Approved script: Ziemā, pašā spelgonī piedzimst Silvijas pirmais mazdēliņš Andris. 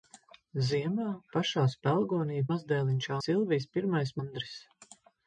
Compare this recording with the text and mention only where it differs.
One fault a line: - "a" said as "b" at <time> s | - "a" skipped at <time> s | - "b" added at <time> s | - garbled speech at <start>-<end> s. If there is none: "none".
- "piedzimst" said as "mazdēliņš" at 2.5 s
- "mazdēliņš" skipped at 4.2 s